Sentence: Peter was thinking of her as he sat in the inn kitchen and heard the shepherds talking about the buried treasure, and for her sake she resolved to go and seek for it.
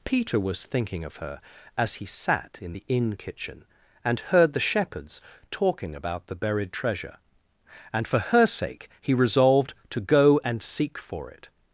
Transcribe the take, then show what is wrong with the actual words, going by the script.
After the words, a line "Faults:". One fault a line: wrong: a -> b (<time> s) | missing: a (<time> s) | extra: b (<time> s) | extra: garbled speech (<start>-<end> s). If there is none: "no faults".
Peter was thinking of her as he sat in the inn kitchen and heard the shepherds talking about the buried treasure, and for her sake he resolved to go and seek for it.
Faults:
wrong: she -> he (9.0 s)